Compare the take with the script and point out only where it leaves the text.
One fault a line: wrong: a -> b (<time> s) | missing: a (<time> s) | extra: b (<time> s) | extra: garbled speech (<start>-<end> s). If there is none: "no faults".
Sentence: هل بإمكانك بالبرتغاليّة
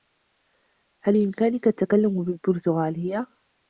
extra: التّكلّم (1.7 s)